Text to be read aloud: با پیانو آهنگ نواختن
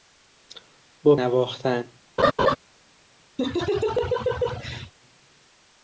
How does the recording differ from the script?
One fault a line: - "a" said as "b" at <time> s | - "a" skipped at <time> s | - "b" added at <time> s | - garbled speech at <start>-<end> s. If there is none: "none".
- "پیانو آهنگ" skipped at 1.1 s